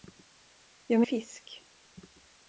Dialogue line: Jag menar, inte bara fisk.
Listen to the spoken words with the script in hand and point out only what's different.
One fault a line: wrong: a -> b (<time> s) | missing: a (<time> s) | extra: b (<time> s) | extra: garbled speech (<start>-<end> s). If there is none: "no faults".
missing: menar inte bara (1.0 s)